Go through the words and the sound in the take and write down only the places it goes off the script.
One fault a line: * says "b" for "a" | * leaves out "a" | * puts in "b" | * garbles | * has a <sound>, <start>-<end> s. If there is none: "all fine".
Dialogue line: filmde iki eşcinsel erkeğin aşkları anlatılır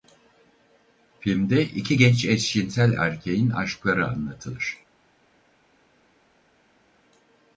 * puts in "genç"